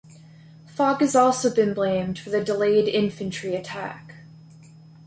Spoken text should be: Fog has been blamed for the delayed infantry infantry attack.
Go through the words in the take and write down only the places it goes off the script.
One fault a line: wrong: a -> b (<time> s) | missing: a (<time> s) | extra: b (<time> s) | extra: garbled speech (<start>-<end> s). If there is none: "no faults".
extra: also (1.1 s)
missing: infantry (3.5 s)